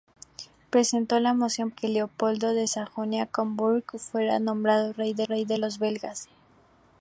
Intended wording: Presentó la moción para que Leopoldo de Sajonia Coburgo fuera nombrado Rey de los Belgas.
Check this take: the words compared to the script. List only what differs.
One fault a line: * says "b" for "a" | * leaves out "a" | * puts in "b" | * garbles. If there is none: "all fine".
* leaves out "para"
* puts in "Rey de"